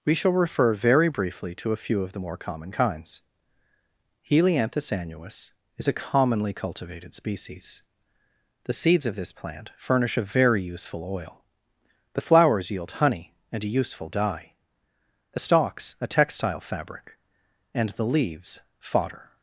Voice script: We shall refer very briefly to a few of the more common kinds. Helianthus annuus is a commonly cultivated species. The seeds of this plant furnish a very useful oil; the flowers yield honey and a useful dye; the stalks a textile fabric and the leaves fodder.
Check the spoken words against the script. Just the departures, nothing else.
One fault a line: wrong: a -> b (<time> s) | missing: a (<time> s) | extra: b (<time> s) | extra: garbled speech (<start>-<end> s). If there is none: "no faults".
no faults